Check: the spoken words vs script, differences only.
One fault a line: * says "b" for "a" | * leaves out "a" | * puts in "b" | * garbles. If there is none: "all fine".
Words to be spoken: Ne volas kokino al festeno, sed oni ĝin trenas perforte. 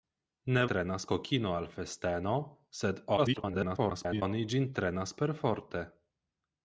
* says "trenas" for "volas"
* garbles